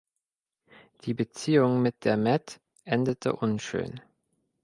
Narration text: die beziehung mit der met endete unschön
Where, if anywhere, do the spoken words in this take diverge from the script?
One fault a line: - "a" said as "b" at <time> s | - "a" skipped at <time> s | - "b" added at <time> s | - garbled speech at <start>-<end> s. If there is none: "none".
none